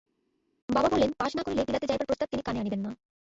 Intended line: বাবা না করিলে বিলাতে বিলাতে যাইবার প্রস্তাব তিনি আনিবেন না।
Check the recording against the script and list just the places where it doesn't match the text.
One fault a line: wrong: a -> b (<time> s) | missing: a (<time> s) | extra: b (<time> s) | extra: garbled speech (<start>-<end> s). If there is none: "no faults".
extra: বলেন পাস (0.9 s)
missing: বিলাতে (1.9 s)
extra: কানে (2.4 s)